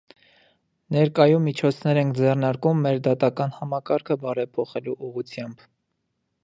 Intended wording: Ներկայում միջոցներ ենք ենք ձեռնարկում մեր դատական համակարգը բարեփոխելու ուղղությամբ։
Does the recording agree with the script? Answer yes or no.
no